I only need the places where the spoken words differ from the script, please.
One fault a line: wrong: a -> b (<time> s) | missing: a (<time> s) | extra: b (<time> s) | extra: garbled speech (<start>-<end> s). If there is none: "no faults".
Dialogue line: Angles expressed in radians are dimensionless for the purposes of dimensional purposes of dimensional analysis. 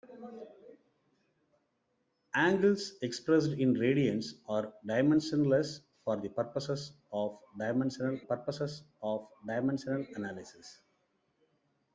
no faults